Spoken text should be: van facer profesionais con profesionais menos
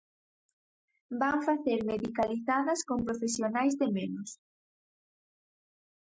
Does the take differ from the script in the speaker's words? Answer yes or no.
yes